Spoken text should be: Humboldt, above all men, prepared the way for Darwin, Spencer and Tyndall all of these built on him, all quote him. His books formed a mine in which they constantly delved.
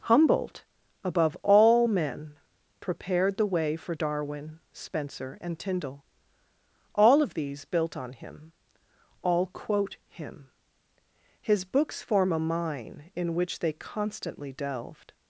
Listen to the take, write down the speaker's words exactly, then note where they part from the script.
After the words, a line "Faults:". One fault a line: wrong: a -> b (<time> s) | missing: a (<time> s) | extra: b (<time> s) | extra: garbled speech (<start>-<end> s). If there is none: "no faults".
Humboldt, above all men, prepared the way for Darwin, Spencer and Tyndall all of these built on him, all quote him. His books form a mine in which they constantly delved.
Faults:
wrong: formed -> form (12.0 s)